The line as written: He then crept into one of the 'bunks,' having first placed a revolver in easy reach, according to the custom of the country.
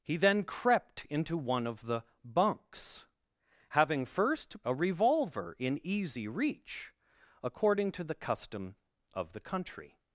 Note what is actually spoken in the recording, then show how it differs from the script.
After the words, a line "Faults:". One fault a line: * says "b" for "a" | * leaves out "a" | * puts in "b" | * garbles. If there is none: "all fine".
He then crept into one of the 'bunks,' having first a revolver in easy reach, according to the custom of the country.
Faults:
* leaves out "placed"